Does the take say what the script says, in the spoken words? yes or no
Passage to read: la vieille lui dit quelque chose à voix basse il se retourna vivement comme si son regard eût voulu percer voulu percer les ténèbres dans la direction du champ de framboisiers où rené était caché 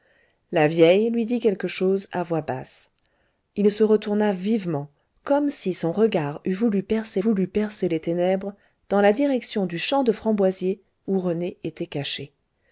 yes